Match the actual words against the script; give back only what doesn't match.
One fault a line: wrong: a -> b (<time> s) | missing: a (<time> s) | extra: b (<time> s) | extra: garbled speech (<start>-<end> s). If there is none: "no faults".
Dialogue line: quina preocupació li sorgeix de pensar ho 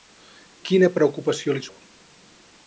missing: sorgeix de pensar (1.6 s)